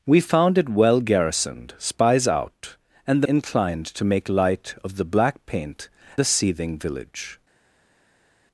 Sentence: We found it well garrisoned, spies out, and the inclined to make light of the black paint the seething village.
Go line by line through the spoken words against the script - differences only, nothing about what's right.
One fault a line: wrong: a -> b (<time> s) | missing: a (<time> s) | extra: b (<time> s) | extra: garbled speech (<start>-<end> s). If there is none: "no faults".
no faults